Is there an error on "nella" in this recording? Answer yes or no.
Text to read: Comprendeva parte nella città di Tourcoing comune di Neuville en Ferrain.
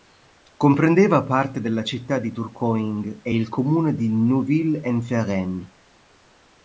yes